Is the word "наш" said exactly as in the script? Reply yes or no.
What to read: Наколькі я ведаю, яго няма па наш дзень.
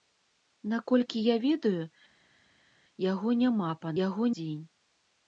no